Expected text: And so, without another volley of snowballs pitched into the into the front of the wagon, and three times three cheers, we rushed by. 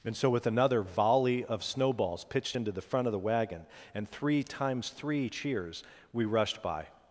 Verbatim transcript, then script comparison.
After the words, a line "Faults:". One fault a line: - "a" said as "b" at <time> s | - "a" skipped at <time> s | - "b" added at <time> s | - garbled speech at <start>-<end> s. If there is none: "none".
And so, with another volley of snowballs pitched into the front of the wagon, and three times three cheers, we rushed by.
Faults:
- "without" said as "with" at 0.3 s
- "into the" skipped at 2.8 s